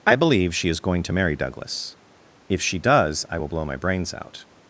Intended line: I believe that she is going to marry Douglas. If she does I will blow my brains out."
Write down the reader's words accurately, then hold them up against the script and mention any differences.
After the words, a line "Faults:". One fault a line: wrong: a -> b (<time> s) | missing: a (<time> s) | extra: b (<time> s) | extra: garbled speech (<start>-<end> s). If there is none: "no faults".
I believe she is going to marry Douglas. If she does I will blow my brains out."
Faults:
missing: that (0.6 s)